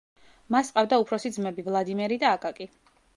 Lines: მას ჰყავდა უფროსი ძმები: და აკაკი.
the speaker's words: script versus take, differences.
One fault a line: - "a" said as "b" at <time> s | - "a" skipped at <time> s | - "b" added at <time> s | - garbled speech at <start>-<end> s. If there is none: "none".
- "ვლადიმერი" added at 1.7 s